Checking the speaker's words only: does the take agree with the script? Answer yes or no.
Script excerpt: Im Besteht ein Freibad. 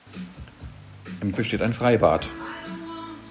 yes